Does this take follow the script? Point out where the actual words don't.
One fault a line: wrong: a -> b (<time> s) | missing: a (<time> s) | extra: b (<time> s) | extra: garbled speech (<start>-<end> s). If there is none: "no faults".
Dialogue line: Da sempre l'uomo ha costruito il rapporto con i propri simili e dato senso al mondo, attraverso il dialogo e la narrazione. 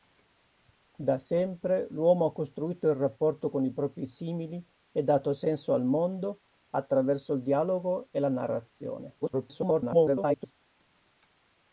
extra: garbled speech (9.2-10.5 s)